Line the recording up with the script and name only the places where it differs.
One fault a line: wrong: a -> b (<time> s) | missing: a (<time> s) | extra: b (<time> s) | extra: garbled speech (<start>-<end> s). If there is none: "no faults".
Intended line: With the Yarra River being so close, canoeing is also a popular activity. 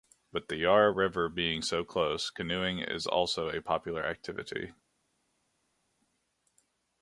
no faults